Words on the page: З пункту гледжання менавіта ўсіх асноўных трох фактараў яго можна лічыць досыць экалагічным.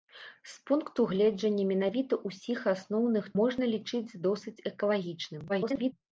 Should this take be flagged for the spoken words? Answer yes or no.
yes